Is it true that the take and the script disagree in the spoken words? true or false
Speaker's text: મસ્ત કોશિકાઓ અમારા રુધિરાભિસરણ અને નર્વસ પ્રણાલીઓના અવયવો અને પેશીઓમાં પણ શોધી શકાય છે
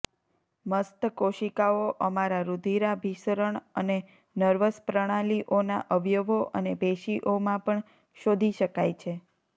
false